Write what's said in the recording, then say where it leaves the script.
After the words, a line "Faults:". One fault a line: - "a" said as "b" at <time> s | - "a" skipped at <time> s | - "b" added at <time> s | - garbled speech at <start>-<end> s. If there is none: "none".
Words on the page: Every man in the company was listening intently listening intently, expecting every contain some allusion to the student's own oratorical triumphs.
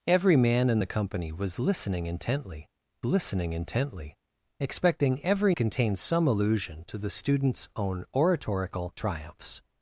Every man in the company was listening intently listening intently, expecting every contain some allusion to the student's own oratorical triumphs.
Faults:
none